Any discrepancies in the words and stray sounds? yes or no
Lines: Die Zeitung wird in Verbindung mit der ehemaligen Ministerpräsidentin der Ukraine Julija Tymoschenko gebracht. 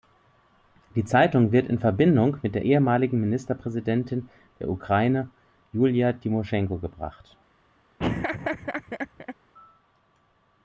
yes